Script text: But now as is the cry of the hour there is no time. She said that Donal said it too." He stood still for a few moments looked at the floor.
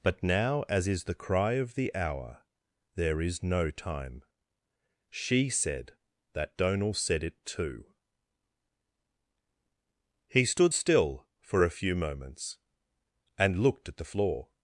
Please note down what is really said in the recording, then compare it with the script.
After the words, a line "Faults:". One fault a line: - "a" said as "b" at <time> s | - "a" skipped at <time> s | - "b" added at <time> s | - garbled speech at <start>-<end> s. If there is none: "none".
But now as is the cry of the hour there is no time. She said that Donal said it too." He stood still for a few moments and looked at the floor.
Faults:
- "and" added at 13.4 s